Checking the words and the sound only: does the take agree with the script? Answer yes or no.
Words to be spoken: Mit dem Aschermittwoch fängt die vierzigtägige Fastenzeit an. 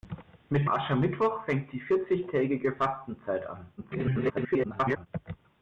no